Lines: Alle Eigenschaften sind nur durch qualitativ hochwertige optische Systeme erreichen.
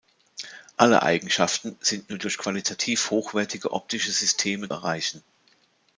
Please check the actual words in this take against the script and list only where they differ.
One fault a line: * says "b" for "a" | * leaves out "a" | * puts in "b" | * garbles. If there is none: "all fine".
all fine